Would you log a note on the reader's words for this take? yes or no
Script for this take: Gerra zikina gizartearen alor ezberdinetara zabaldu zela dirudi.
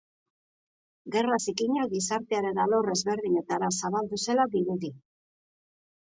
no